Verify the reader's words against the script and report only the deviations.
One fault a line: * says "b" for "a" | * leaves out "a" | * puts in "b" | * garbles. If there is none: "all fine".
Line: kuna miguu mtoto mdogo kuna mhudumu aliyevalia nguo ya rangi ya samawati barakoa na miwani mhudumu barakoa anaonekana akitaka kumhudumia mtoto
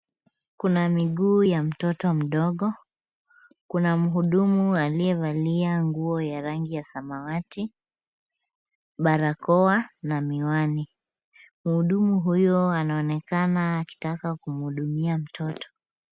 * puts in "ya"
* says "huyo" for "barakoa"